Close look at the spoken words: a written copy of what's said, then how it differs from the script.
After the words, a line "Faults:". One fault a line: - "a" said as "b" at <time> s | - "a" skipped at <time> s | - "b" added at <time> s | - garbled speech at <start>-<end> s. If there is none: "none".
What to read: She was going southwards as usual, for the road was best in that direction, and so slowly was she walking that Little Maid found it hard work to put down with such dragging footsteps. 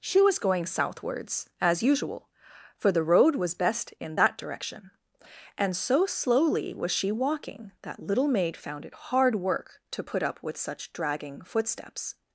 She was going southwards as usual, for the road was best in that direction, and so slowly was she walking that Little Maid found it hard work to put up with such dragging footsteps.
Faults:
- "down" said as "up" at 10.2 s